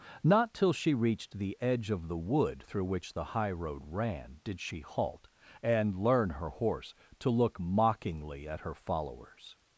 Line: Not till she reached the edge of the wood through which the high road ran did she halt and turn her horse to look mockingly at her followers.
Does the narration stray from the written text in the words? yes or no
yes